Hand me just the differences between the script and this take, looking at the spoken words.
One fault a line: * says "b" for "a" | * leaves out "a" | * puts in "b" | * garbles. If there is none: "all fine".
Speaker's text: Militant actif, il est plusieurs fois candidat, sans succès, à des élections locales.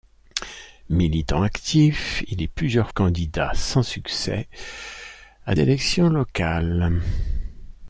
* leaves out "fois"
* leaves out "des"